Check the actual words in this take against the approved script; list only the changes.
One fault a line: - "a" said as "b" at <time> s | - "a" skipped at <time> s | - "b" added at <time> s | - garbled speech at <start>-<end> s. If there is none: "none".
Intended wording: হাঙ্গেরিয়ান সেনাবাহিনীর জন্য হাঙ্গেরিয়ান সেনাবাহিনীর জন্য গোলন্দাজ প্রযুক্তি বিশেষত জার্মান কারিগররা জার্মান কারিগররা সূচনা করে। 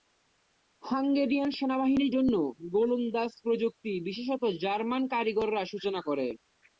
- "হাঙ্গেরিয়ান সেনাবাহিনীর জন্য" skipped at 2.3 s
- "জার্মান কারিগররা" skipped at 5.6 s